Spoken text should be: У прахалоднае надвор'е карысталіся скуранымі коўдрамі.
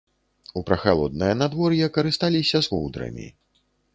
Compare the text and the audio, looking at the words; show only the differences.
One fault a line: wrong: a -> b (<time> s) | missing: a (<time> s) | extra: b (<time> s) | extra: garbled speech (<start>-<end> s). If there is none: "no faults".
missing: скуранымі (2.6 s)